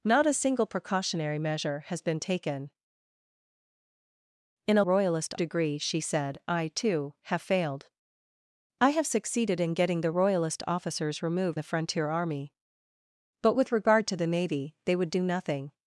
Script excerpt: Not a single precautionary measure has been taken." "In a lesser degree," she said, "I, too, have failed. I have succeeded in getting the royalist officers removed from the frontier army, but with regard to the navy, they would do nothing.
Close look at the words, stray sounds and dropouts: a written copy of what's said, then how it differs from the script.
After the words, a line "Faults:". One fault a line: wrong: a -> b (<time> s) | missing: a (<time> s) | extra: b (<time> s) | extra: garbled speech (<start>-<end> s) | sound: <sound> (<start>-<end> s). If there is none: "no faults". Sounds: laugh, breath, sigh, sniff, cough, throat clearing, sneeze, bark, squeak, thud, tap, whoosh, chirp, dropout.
Not a single precautionary measure has been taken." "In a royalist degree," she said, "I, too, have failed. I have succeeded in getting the royalist officers removed the frontier army, but with regard to the navy, they would do nothing.
Faults:
wrong: lesser -> royalist (4.8 s)
missing: from (11.6 s)